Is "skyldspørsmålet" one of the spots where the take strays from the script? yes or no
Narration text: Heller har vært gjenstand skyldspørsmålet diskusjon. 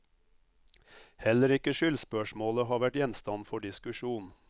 yes